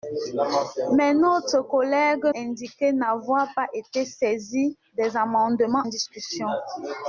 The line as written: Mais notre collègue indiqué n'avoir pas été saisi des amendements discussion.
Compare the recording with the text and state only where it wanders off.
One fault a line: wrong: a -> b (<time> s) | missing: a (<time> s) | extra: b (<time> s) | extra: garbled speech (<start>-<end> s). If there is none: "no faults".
no faults